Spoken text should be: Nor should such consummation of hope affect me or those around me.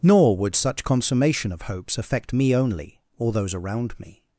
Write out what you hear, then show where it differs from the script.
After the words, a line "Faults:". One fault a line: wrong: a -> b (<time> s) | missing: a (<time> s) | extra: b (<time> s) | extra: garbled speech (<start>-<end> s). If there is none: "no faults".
Nor would such consummation of hopes affect me only, or those around me.
Faults:
wrong: should -> would (0.3 s)
wrong: hope -> hopes (1.6 s)
extra: only (2.5 s)